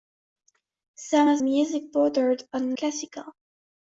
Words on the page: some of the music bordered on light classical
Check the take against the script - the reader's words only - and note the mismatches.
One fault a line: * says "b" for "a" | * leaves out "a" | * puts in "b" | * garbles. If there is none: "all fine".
* leaves out "the"
* leaves out "light"